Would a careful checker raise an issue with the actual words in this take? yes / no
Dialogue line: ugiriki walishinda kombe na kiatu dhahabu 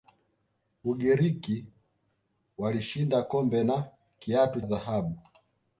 no